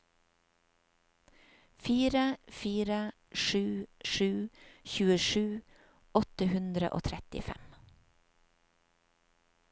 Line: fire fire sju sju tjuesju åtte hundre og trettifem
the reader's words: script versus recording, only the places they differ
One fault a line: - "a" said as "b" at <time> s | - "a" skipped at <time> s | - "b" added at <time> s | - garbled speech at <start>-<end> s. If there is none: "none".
none